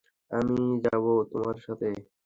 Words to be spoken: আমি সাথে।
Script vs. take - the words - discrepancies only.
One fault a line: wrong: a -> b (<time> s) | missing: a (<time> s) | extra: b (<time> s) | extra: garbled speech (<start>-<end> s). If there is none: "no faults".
extra: যাবো তোমার (0.8 s)